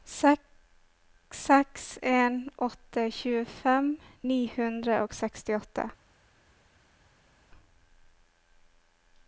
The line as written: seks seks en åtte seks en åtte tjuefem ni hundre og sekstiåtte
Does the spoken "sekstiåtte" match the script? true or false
true